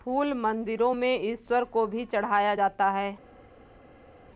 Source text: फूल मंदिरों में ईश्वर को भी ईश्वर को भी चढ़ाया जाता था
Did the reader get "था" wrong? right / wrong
wrong